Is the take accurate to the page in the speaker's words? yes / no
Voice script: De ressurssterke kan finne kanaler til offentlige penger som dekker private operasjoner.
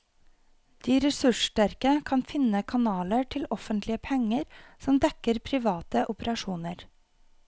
yes